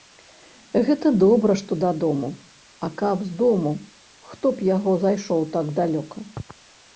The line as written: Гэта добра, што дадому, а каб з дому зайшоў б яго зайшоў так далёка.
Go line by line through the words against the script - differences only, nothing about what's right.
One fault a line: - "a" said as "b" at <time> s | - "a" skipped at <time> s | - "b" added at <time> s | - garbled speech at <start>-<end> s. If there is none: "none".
- "зайшоў" said as "хто" at 4.3 s